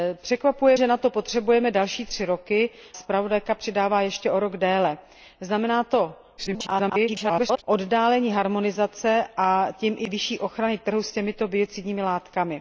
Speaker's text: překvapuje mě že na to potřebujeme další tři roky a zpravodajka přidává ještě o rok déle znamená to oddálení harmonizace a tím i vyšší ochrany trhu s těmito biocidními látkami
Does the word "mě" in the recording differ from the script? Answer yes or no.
yes